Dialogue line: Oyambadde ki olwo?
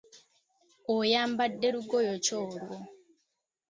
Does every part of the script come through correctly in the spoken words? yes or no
no